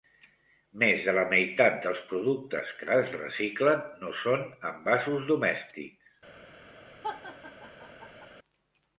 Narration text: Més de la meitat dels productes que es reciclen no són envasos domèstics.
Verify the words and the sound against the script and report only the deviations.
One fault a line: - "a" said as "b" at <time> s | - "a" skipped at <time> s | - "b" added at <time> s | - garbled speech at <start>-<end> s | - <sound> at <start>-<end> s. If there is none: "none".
- laugh at 7.0-8.3 s